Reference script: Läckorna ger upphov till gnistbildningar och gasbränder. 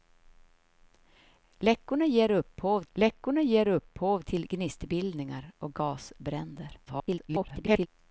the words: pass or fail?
fail